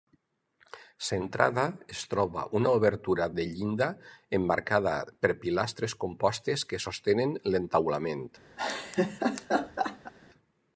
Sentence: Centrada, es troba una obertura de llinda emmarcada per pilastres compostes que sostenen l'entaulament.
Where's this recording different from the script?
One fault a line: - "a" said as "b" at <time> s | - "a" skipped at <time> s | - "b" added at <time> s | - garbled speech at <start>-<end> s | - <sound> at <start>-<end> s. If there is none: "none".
- laugh at 8.6-10.1 s